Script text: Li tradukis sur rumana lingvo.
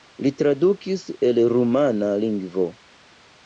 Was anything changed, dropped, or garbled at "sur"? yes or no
yes